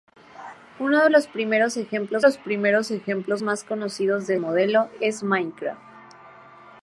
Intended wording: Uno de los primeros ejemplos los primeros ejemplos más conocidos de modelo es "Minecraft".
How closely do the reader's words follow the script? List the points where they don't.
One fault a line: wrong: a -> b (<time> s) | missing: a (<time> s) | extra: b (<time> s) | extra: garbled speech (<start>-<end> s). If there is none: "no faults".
no faults